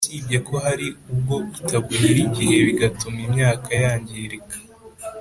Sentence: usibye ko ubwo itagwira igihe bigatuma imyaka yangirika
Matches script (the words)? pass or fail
fail